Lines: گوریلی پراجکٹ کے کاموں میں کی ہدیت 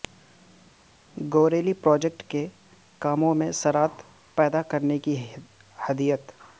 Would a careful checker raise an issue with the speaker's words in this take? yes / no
yes